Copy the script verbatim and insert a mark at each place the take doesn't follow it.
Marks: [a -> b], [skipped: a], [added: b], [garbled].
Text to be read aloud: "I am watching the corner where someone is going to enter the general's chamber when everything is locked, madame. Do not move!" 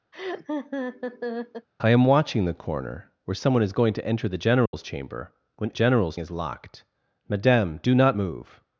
"I am watching the corner where someone is going to enter the general's chamber when [everything -> general's] is locked, madame. Do not move!"